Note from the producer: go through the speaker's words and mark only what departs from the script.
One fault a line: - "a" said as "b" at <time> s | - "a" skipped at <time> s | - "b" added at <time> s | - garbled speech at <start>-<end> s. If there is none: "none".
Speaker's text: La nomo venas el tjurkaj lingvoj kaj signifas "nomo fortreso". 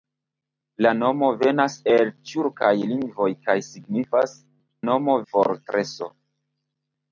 none